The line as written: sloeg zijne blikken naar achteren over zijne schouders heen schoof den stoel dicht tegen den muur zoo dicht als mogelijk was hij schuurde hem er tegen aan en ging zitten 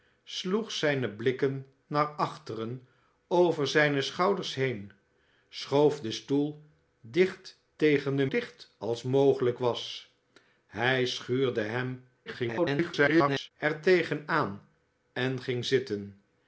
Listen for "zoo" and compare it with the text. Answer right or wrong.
wrong